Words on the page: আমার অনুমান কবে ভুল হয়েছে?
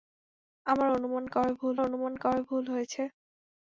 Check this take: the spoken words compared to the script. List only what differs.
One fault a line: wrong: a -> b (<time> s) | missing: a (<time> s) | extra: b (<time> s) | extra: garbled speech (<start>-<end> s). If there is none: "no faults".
extra: অনুমান কবে ভুল (1.9 s)